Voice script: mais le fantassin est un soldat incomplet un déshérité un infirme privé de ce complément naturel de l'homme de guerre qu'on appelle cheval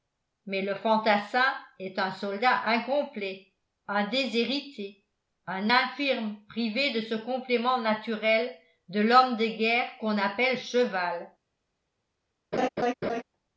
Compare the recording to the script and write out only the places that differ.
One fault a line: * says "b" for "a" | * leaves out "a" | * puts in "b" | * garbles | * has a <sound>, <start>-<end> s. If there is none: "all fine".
* has a laugh, 12.5-13.2 s